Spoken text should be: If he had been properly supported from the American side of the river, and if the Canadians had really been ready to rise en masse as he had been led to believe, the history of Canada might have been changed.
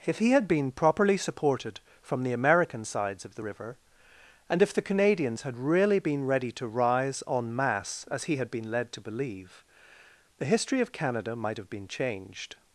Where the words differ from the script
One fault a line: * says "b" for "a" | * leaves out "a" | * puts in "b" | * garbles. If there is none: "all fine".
* says "sides" for "side"